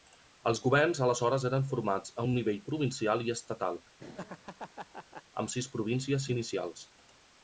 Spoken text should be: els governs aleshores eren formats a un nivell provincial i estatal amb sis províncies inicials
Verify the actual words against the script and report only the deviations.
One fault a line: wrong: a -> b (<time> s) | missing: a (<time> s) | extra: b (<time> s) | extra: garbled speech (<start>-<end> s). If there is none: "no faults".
no faults